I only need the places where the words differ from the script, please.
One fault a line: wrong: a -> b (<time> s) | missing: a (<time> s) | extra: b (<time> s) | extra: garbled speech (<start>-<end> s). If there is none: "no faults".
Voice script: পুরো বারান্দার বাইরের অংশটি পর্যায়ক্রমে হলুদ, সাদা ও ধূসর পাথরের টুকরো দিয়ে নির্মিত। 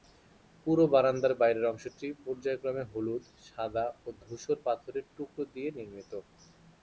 no faults